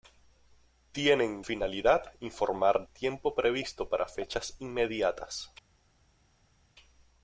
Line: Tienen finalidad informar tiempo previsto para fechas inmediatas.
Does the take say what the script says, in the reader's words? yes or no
yes